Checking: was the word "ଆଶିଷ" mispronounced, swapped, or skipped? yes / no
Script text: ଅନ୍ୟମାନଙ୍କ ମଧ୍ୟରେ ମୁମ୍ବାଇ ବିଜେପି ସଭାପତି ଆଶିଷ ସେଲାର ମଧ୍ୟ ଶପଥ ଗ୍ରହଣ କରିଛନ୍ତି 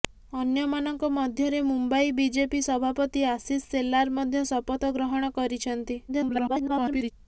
no